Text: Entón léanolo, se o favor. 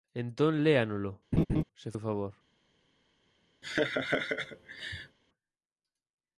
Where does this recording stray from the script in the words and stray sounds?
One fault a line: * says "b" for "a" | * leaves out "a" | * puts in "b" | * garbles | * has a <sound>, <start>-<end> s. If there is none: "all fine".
* has a laugh, 1.3-1.6 s
* has a laugh, 3.6-5.2 s